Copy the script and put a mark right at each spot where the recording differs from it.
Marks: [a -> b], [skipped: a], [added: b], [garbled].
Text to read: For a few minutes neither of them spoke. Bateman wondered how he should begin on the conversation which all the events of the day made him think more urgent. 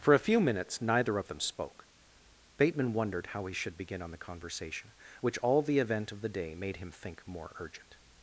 For a few minutes neither of them spoke. Bateman wondered how he should begin on the conversation which all the [events -> event] of the day made him think more urgent.